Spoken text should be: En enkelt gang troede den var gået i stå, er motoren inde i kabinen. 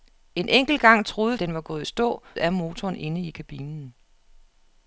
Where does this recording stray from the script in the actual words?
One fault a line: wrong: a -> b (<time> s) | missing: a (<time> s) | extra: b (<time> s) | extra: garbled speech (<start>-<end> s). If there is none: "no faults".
no faults